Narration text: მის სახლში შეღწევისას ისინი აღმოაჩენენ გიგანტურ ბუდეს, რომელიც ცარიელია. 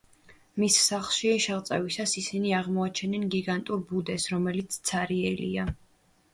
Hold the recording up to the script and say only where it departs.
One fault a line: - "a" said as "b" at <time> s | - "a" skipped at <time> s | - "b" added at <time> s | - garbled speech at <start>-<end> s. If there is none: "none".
none